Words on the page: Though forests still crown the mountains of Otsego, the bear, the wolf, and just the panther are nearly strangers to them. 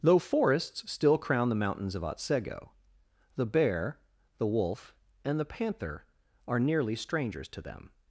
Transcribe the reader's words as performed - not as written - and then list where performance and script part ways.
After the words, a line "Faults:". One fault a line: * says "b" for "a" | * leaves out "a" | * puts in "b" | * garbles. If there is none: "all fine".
Though forests still crown the mountains of Otsego, the bear, the wolf, and the panther are nearly strangers to them.
Faults:
* leaves out "just"